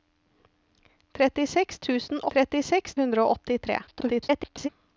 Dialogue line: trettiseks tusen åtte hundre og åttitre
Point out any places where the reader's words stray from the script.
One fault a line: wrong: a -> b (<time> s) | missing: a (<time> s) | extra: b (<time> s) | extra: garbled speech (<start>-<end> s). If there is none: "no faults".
wrong: åtte -> trettiseks (2.3 s)
extra: garbled speech (3.9-4.7 s)